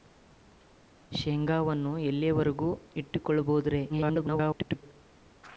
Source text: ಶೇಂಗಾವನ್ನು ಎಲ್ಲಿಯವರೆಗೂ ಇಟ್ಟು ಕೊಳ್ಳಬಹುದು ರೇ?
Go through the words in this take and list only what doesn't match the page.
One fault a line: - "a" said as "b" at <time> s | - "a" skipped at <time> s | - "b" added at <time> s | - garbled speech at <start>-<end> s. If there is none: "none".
- garbled speech at 3.9-4.8 s